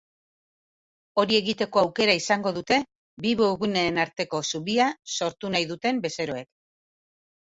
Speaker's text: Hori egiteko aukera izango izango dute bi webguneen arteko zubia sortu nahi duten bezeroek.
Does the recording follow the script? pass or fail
fail